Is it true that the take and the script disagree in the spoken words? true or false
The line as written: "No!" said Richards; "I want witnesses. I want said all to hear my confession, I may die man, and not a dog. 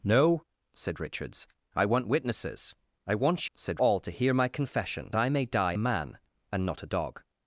false